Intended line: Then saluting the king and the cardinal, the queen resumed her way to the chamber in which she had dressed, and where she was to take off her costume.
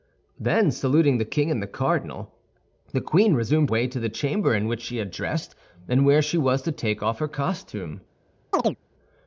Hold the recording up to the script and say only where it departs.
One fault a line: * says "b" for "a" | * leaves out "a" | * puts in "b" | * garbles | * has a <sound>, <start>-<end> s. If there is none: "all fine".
* leaves out "her"
* has a chirp, 8.5-8.8 s